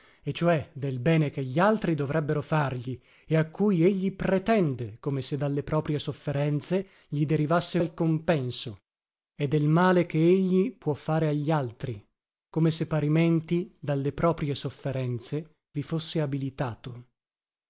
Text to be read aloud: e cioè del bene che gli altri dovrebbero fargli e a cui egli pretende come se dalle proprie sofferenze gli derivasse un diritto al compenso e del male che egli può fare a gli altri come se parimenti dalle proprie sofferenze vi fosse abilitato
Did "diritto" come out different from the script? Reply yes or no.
yes